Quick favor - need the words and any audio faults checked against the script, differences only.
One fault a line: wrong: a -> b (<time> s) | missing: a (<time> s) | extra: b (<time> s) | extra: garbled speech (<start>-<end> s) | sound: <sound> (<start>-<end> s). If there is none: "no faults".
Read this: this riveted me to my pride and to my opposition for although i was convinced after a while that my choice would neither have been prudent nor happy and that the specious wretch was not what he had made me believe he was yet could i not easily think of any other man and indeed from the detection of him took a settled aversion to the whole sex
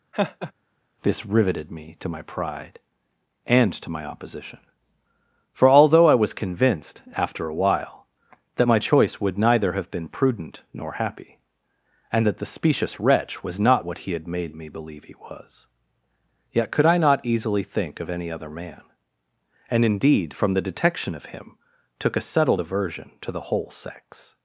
sound: laugh (0.1-0.5 s)